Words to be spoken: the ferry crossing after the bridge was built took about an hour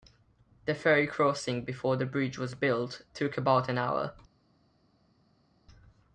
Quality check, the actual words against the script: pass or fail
fail